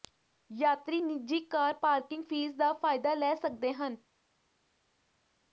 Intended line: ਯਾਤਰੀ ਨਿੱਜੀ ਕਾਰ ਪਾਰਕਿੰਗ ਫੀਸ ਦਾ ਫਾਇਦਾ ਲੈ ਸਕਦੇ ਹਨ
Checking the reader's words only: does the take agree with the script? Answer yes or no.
yes